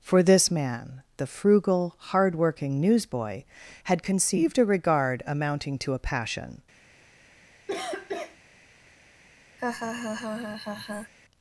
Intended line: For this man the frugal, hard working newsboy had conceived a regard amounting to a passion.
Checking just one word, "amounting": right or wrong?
right